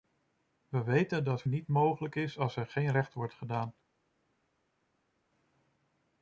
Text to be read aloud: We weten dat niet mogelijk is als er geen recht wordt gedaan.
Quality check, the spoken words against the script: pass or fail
pass